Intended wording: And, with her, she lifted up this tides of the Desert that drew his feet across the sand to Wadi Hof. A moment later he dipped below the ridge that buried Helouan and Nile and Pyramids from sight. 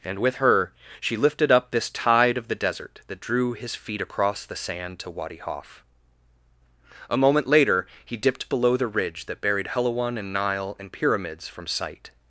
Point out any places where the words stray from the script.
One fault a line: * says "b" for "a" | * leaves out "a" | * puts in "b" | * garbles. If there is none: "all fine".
* says "tide" for "tides"